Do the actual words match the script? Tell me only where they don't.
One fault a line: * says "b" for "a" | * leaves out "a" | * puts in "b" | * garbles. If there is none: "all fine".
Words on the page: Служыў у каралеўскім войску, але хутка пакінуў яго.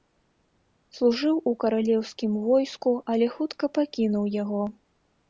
all fine